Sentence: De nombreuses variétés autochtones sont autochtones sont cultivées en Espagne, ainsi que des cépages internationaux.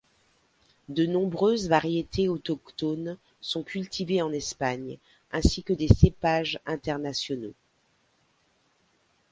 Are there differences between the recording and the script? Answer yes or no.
yes